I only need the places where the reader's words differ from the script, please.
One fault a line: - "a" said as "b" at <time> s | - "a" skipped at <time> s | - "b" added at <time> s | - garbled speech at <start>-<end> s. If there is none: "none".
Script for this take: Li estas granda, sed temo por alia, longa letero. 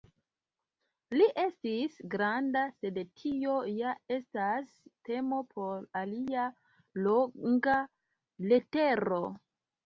- "estas" said as "estis" at 1.4 s
- "tio ja estas" added at 3.2 s